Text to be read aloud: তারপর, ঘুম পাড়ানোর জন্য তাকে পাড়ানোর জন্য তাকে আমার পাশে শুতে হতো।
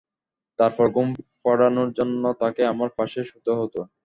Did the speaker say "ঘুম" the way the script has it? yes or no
yes